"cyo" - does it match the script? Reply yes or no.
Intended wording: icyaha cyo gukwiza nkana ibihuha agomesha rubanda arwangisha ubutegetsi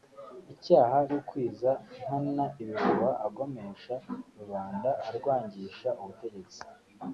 no